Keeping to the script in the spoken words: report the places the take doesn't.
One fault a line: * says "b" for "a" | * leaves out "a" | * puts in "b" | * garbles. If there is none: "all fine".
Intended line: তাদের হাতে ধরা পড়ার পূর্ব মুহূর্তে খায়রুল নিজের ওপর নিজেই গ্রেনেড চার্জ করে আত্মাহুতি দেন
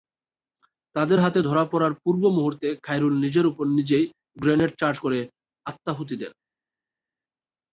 all fine